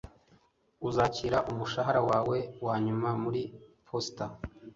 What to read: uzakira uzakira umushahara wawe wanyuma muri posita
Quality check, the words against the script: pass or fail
fail